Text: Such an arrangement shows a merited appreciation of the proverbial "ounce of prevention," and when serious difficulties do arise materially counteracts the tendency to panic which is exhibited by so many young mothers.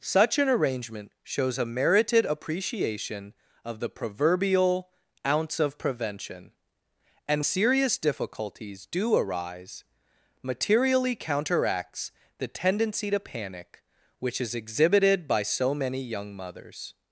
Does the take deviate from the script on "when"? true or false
true